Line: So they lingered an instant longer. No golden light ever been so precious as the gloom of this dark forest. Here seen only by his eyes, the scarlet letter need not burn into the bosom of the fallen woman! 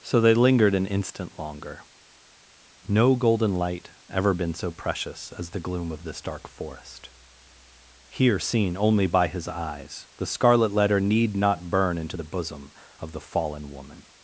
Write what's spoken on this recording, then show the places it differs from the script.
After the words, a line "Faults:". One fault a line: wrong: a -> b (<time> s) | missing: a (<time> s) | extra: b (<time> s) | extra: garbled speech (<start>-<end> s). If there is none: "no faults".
So they lingered an instant longer. No golden light ever been so precious as the gloom of this dark forest. Here seen only by his eyes, the scarlet letter need not burn into the bosom of the fallen woman!
Faults:
no faults